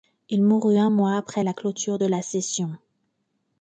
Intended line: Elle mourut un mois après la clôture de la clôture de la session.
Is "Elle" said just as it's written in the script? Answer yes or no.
no